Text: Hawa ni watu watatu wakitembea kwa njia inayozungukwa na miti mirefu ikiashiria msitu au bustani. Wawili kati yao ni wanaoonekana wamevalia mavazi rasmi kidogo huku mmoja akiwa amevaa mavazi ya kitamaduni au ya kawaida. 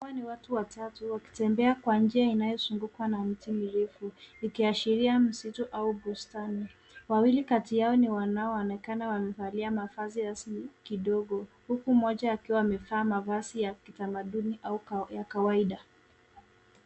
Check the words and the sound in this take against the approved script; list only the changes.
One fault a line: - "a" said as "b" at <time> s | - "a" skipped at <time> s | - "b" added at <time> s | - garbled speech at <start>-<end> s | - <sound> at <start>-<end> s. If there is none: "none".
none